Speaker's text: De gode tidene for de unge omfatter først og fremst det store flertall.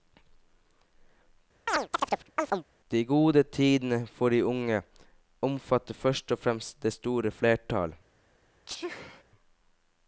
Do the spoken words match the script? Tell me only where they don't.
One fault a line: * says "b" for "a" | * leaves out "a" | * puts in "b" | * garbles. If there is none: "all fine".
all fine